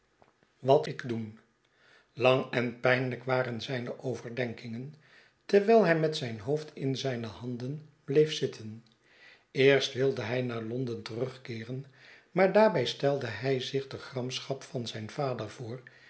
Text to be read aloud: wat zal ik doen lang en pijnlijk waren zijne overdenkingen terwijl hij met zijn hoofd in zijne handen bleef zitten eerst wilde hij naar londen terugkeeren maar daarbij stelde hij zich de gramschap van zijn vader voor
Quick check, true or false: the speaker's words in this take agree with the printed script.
false